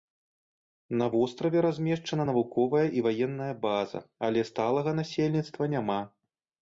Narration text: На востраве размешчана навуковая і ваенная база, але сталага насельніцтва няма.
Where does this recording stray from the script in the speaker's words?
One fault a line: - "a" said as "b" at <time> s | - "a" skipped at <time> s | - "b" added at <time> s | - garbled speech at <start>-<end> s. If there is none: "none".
none